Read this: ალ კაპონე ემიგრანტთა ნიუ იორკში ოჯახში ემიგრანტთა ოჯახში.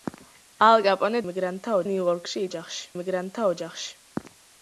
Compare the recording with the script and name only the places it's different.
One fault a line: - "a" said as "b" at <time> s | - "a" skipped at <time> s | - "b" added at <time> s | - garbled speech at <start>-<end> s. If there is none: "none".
none